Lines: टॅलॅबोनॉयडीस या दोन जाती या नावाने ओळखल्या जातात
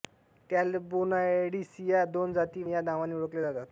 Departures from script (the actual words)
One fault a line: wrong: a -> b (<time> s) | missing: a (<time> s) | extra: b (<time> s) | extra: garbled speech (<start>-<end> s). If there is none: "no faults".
no faults